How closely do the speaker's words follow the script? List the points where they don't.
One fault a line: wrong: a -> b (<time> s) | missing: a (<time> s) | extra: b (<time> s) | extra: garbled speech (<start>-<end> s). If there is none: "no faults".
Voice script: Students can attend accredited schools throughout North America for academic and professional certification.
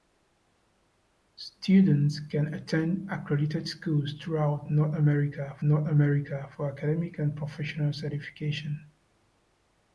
extra: North America (5.6 s)